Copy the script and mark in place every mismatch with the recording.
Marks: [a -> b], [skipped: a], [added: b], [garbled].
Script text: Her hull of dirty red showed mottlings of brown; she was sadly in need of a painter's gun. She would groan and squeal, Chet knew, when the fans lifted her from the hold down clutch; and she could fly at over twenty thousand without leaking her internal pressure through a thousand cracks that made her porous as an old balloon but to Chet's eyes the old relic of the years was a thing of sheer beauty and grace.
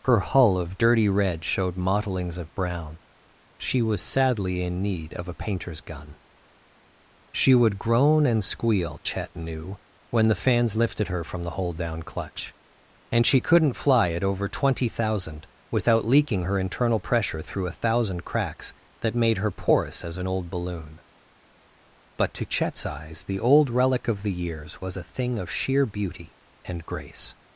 Her hull of dirty red showed mottlings of brown; she was sadly in need of a painter's gun. She would groan and squeal, Chet knew, when the fans lifted her from the hold down clutch; and she [could -> couldn't] fly at over twenty thousand without leaking her internal pressure through a thousand cracks that made her porous as an old balloon but to Chet's eyes the old relic of the years was a thing of sheer beauty and grace.